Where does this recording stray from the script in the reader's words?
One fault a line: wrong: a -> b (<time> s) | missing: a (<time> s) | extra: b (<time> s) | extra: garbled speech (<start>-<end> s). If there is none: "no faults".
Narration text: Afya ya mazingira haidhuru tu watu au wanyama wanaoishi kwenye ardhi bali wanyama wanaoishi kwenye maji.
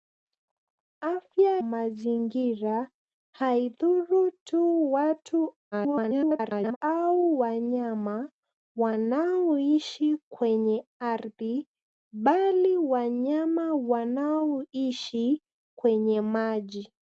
missing: ya (1.6 s)
extra: garbled speech (5.7-6.8 s)